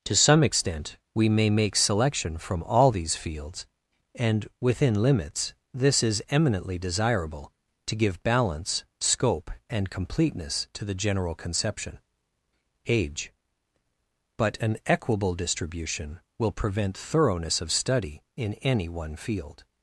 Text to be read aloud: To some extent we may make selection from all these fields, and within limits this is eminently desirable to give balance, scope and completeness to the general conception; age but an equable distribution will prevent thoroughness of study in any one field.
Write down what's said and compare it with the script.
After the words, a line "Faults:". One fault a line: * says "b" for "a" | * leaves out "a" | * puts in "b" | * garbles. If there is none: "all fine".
To some extent we may make selection from all these fields, and within limits this is eminently desirable to give balance, scope and completeness to the general conception; age but an equable distribution will prevent thoroughness of study in any one field.
Faults:
all fine